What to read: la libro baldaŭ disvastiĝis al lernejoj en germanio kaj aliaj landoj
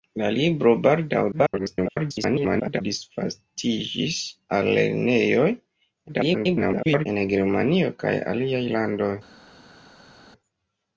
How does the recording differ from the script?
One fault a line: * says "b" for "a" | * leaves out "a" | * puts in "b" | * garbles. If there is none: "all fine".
* garbles
* garbles